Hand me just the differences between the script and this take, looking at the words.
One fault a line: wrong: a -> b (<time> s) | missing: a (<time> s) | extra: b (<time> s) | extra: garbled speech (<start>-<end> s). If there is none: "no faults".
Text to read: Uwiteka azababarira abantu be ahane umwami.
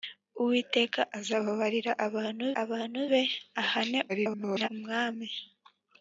extra: abantu (2.6 s)
extra: garbled speech (4.1-4.7 s)